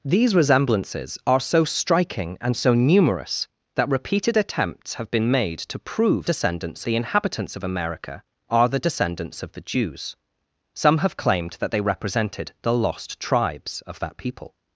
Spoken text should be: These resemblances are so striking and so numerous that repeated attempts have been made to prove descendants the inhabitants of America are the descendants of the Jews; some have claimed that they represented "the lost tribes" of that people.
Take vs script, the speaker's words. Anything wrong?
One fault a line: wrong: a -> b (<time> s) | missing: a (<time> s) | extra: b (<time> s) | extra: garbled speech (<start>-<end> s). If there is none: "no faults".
no faults